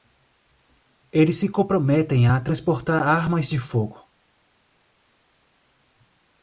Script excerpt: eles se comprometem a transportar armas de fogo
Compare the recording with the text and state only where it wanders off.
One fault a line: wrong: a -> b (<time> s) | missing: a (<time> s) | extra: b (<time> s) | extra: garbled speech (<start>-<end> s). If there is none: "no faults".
no faults